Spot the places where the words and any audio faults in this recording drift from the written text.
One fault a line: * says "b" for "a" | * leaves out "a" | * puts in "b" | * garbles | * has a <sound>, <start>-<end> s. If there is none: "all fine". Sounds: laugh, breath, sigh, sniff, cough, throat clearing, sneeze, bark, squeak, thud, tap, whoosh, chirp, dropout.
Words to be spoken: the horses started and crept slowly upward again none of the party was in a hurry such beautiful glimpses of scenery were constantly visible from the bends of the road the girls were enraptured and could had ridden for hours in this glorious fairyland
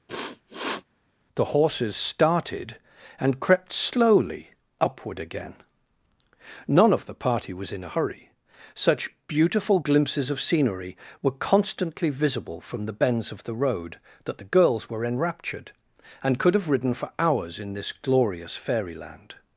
* has a sniff, 0.1-0.8 s
* puts in "that"
* says "have" for "had"